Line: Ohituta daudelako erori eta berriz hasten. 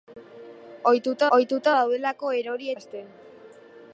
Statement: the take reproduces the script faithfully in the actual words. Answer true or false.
false